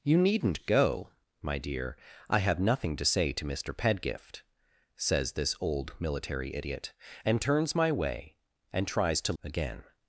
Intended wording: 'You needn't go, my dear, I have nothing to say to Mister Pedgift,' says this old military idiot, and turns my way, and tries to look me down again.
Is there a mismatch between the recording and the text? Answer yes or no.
yes